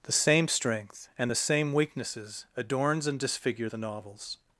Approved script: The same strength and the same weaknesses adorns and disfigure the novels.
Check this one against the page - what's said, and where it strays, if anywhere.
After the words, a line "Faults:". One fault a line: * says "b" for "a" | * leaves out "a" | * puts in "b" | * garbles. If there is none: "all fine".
The same strength and the same weaknesses adorns and disfigure the novels.
Faults:
all fine